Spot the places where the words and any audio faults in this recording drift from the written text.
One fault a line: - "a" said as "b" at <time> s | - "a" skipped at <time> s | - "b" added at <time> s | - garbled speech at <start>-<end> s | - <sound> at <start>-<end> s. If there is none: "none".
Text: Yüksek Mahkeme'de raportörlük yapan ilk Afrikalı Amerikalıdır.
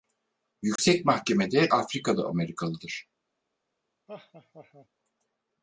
- dropout at 0.8-0.8 s
- "raportörlük yapan ilk" skipped at 1.7 s
- laugh at 4.1-4.9 s